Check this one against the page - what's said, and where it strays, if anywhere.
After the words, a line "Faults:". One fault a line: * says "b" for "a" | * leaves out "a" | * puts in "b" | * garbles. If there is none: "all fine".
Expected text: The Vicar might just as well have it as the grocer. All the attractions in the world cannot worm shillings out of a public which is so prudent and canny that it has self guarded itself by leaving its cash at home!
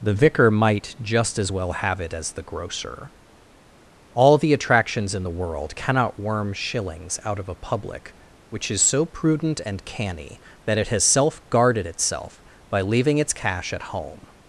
The Vicar might just as well have it as the grocer. All the attractions in the world cannot worm shillings out of a public which is so prudent and canny that it has self guarded itself by leaving its cash at home!
Faults:
all fine